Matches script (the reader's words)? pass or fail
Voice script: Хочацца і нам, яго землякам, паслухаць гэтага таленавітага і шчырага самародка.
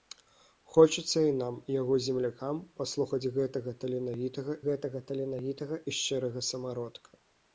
fail